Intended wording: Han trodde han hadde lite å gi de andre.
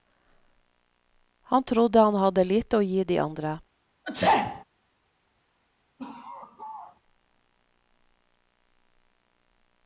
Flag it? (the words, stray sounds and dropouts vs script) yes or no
yes